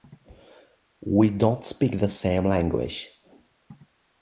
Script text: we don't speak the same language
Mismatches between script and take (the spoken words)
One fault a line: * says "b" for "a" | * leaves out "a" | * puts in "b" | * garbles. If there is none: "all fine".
all fine